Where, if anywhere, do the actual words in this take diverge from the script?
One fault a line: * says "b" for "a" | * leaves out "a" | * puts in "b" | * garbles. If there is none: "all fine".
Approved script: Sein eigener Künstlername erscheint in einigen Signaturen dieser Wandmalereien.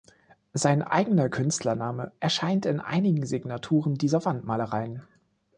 all fine